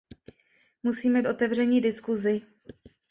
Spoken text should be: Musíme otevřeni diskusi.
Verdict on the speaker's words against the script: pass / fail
pass